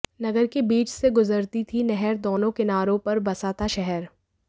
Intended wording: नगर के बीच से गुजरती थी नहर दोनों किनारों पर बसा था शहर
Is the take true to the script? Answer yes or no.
yes